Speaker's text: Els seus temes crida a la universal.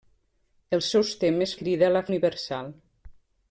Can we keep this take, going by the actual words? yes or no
yes